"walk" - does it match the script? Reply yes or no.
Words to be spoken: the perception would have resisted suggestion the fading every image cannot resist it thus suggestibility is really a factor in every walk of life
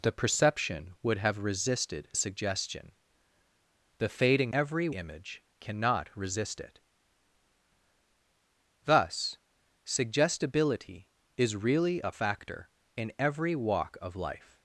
yes